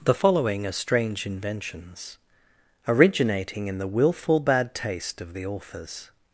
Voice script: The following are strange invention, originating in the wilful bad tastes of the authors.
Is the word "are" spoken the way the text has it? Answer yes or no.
yes